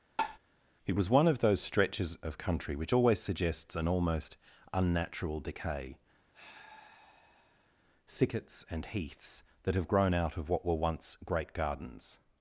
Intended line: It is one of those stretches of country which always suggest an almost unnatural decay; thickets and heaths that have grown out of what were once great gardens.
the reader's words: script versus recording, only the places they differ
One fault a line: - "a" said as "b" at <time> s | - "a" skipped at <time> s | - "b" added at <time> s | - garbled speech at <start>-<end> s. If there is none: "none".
- "is" said as "was" at 1.0 s
- "suggest" said as "suggests" at 3.2 s